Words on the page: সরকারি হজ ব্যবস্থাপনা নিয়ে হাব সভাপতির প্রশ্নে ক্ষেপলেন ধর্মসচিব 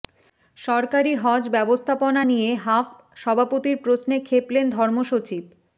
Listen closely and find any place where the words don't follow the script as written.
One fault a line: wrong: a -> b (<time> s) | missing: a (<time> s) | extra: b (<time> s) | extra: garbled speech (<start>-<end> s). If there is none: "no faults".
no faults